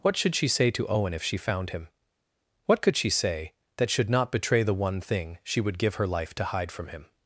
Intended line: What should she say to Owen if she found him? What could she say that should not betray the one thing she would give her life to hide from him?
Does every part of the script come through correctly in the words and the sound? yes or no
yes